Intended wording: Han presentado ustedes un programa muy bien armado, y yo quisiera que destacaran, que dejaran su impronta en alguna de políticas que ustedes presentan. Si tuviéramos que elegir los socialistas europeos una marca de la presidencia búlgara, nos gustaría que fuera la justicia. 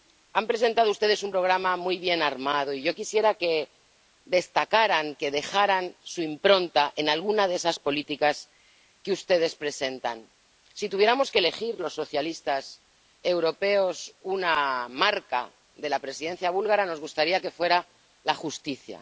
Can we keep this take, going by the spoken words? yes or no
no